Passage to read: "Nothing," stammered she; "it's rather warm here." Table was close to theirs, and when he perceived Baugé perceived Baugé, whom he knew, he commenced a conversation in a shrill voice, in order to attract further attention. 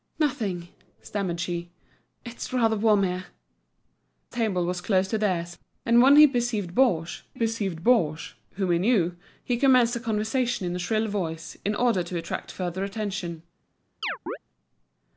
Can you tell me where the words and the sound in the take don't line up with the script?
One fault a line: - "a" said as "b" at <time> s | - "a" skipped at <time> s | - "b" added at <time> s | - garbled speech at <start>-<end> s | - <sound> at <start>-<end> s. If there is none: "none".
- chirp at 14.0-14.4 s